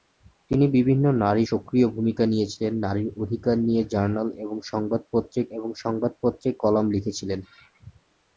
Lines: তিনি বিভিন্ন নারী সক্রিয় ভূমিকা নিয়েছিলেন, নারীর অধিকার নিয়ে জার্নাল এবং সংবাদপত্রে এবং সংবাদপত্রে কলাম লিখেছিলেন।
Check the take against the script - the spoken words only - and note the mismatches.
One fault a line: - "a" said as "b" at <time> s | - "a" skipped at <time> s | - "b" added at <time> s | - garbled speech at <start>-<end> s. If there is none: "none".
none